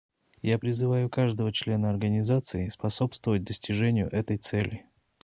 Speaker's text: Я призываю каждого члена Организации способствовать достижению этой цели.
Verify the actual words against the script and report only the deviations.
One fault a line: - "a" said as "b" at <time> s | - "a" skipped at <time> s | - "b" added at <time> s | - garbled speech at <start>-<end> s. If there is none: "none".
none